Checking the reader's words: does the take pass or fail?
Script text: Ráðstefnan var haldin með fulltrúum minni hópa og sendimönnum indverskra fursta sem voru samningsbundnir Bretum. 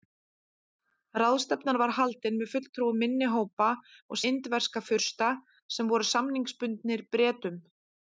fail